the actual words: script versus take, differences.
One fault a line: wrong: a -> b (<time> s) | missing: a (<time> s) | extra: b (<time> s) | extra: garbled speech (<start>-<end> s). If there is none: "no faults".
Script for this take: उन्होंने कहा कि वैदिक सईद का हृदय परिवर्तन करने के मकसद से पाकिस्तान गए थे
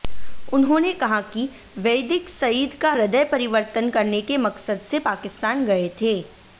no faults